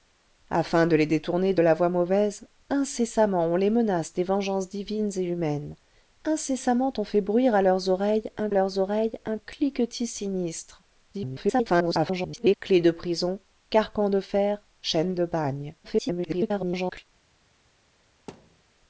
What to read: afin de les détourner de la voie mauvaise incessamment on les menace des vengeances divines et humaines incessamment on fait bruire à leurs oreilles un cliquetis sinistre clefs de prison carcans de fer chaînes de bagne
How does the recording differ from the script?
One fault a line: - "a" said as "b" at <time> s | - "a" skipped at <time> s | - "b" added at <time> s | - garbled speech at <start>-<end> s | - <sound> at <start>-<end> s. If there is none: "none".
- "leurs oreilles un" added at 8.5 s
- garbled speech at 11.1-12.6 s
- garbled speech at 15.8-17.0 s
- thud at 18.3-18.6 s